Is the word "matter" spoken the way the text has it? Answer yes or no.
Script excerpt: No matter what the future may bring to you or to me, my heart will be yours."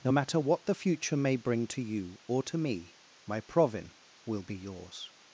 yes